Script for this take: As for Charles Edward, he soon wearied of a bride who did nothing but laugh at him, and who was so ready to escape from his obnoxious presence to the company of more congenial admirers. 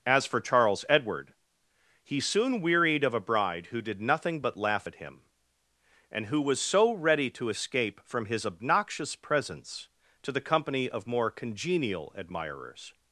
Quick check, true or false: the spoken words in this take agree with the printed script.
true